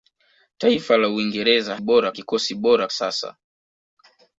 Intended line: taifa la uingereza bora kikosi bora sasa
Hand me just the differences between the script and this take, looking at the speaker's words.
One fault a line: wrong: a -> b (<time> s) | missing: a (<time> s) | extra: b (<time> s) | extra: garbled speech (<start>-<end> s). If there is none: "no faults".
no faults